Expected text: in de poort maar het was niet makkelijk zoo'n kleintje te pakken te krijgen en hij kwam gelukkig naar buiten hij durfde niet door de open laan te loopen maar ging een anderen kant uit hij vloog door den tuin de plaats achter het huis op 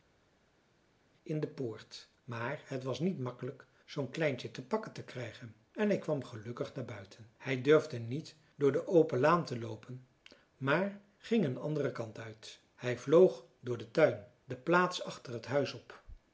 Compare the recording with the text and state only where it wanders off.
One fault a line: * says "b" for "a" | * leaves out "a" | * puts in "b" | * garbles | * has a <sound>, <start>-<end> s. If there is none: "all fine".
all fine